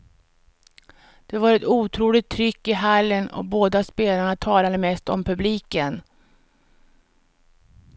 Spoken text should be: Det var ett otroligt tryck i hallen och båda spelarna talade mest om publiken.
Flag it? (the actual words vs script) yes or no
no